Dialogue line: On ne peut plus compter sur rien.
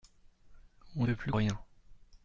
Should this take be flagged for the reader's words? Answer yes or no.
yes